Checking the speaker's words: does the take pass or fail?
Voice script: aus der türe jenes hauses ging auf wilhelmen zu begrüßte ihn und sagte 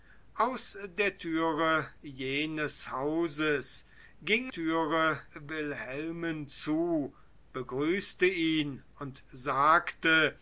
fail